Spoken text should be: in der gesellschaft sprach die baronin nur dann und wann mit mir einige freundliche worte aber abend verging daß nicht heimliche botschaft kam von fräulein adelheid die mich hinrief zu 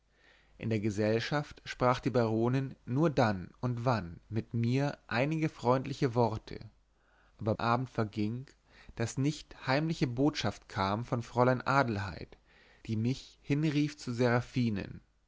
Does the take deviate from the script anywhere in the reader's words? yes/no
no